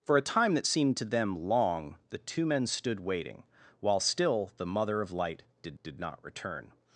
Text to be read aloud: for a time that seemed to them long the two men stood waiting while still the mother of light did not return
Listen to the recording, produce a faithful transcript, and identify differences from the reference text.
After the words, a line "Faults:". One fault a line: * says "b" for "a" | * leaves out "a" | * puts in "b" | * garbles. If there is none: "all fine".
for a time that seemed to them long the two men stood waiting while still the mother of light did did not return
Faults:
* puts in "did"